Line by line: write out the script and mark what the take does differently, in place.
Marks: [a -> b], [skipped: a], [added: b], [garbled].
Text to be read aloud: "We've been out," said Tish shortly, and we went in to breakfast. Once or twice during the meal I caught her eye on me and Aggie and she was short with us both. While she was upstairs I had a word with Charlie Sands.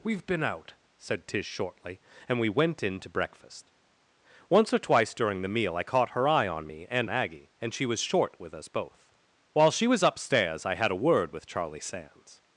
"We've been out," said Tish shortly, and we went in to breakfast. Once or twice during the meal I caught her eye on me and Aggie and she was short with us both. While she was upstairs I had a word with Charlie Sands.